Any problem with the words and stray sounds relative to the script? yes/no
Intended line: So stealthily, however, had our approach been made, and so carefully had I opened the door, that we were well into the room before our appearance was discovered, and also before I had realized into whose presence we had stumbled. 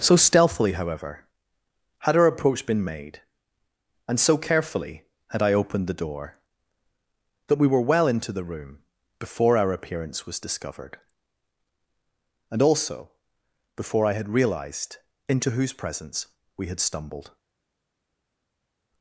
no